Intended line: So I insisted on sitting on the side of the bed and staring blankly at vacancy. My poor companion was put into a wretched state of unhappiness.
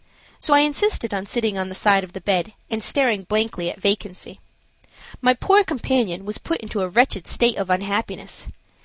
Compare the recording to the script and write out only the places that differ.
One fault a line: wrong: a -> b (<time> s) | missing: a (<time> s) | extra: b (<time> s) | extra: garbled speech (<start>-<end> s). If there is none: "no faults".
no faults